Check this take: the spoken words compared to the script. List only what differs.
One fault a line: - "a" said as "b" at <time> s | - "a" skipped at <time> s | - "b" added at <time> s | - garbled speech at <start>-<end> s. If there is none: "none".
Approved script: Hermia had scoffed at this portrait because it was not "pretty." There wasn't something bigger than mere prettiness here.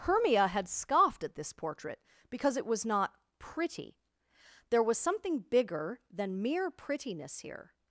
- "wasn't" said as "was" at 4.8 s